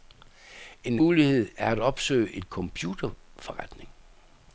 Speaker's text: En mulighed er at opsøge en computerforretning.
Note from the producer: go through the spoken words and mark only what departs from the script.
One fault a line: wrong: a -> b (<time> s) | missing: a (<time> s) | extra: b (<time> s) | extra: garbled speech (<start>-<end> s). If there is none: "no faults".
no faults